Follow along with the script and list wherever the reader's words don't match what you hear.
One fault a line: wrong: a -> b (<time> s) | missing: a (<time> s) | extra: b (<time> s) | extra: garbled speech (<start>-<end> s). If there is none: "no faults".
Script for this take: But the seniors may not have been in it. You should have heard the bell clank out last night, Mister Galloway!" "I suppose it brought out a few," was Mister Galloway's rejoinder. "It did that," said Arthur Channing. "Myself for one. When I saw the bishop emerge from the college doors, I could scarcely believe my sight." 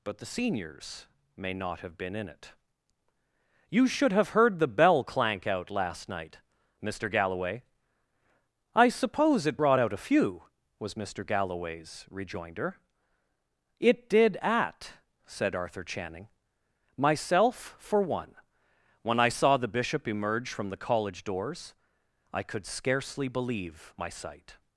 wrong: that -> at (14.4 s)